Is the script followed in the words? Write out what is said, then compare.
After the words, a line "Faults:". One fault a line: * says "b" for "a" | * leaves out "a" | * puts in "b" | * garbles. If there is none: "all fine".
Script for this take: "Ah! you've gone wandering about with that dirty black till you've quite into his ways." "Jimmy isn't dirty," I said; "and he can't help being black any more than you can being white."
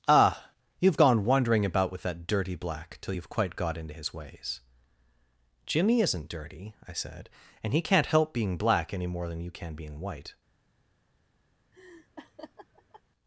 "Ah! you've gone wandering about with that dirty black till you've quite got into his ways." "Jimmy isn't dirty," I said; "and he can't help being black any more than you can being white."
Faults:
* puts in "got"